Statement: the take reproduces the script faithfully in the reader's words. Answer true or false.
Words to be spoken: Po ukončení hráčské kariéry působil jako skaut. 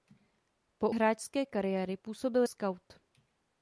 false